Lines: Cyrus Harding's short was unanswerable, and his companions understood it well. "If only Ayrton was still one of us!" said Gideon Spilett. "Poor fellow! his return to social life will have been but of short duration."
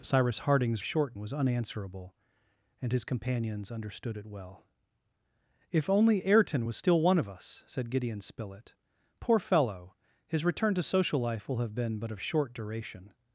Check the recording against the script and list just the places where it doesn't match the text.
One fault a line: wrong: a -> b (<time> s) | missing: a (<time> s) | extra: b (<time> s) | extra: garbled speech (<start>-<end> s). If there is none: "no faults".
no faults